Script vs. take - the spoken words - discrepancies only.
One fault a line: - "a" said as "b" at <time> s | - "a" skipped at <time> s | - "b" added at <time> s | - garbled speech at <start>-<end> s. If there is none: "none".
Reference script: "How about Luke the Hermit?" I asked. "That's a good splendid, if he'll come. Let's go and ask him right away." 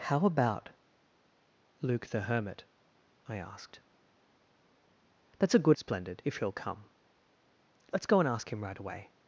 none